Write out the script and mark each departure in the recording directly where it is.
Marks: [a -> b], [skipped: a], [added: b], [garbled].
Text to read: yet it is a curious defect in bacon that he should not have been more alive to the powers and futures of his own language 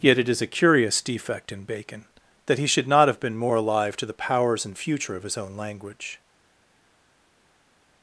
yet it is a curious defect in bacon that he should not have been more alive to the powers and [futures -> future] of his own language